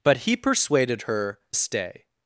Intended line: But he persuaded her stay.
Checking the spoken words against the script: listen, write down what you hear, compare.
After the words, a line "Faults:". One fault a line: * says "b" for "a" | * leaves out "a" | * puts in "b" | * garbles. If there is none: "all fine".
But he persuaded her stay.
Faults:
all fine